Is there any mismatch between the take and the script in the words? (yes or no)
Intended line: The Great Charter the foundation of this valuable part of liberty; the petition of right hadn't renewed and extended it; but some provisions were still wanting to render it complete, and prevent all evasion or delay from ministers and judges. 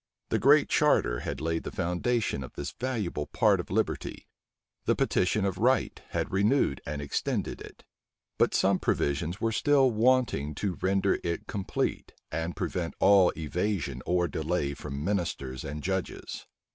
yes